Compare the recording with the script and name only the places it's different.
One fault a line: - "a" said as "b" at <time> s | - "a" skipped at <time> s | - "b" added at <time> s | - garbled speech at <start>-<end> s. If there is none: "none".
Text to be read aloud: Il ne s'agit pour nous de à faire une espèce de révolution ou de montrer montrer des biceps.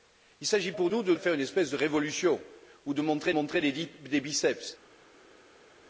none